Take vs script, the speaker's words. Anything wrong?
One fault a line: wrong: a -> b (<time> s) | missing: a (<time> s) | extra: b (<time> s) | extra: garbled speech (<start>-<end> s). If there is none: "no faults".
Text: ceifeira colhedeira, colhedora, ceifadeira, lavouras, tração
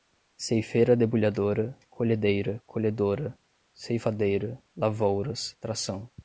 extra: debulhadora (0.9 s)